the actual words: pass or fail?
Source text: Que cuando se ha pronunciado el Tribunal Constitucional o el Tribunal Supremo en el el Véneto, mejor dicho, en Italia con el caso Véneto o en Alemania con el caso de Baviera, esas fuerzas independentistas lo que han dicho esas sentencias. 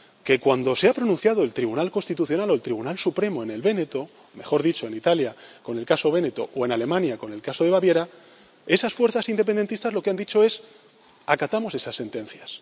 fail